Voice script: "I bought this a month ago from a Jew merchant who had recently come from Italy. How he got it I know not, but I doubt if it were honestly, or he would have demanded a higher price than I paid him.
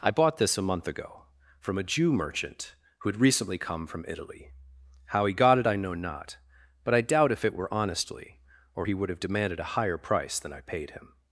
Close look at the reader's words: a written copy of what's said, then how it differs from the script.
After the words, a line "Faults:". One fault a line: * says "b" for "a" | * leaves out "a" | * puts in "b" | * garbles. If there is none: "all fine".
"I bought this a month ago from a Jew merchant who had recently come from Italy. How he got it I know not, but I doubt if it were honestly, or he would have demanded a higher price than I paid him.
Faults:
all fine